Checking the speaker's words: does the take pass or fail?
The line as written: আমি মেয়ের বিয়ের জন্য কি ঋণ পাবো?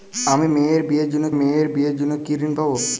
fail